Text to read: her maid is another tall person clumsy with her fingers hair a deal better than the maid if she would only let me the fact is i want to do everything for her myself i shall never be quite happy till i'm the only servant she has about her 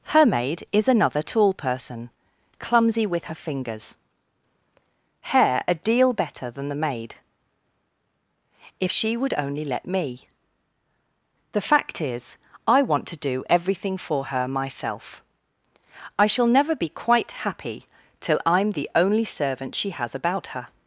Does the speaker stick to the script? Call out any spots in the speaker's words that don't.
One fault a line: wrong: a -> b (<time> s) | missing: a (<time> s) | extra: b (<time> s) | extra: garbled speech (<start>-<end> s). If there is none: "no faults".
no faults